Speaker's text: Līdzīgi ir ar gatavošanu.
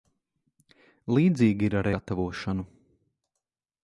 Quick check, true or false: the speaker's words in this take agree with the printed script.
true